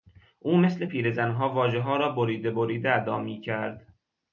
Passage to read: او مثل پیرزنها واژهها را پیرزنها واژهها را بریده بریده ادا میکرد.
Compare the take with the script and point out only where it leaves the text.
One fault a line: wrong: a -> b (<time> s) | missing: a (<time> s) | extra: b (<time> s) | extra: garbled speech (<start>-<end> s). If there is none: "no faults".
missing: پیرزنها واژهها را (2.1 s)